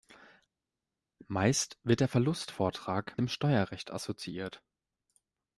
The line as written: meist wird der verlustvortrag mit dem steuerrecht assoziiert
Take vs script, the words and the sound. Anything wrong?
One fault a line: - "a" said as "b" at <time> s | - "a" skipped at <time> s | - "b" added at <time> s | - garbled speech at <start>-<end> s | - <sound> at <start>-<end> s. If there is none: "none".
- "mit" skipped at 3.2 s